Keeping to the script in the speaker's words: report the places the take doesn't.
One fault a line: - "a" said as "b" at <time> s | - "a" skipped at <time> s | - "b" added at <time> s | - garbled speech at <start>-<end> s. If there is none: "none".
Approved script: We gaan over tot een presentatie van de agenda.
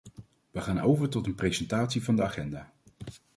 none